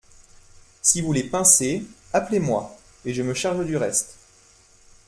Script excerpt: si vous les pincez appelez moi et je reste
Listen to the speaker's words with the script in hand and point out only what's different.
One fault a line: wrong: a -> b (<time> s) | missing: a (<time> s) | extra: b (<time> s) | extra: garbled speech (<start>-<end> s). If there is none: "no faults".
extra: me charge du (3.2 s)